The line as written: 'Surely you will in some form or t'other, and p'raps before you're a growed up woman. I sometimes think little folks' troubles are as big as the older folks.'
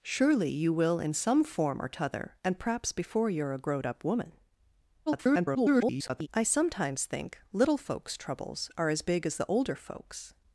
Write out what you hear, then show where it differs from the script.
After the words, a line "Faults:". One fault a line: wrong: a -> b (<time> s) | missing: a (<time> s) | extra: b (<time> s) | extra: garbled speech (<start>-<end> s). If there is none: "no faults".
'Surely you will in some form or t'other, and p'raps before you're a growed up woman. [garbled] I sometimes think little folks' troubles are as big as the older folks.'
Faults:
extra: garbled speech (5.1-6.3 s)